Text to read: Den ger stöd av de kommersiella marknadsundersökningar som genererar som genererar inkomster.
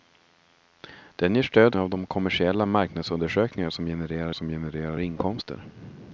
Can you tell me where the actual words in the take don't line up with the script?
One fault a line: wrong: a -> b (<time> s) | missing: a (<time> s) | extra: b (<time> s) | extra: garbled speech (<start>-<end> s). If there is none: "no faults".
no faults